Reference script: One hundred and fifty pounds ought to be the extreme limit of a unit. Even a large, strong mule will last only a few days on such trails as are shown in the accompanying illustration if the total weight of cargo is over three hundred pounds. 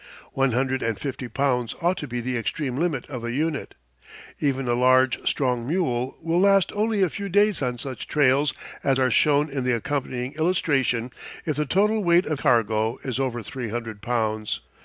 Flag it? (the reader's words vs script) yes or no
no